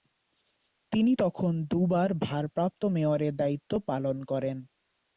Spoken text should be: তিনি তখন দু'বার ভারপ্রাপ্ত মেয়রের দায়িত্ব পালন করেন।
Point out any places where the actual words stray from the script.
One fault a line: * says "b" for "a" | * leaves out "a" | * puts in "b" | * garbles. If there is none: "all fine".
all fine